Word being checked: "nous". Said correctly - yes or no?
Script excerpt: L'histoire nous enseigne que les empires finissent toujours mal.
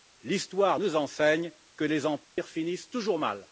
yes